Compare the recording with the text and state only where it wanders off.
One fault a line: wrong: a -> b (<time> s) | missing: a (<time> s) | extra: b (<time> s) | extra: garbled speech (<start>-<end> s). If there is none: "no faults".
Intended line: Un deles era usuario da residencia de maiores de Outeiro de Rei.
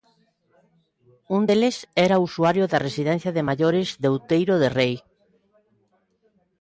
no faults